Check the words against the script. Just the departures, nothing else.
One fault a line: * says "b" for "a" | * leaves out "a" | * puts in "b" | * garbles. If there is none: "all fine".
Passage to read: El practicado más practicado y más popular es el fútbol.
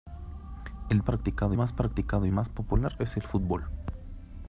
all fine